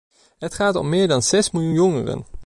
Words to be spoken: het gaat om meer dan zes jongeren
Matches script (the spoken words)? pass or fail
fail